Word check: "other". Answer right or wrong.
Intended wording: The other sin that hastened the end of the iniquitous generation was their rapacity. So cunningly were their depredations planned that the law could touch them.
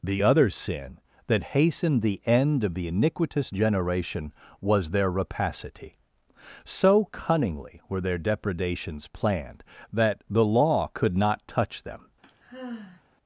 right